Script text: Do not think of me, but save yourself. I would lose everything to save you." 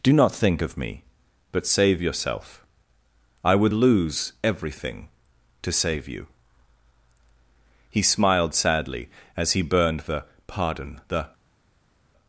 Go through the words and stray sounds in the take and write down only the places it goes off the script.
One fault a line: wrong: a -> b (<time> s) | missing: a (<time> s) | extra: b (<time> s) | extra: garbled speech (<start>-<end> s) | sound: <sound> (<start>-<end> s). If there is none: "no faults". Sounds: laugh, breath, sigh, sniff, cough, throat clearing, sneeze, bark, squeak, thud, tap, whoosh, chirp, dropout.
extra: He smiled sadly as he burned the pardon The (7.9 s)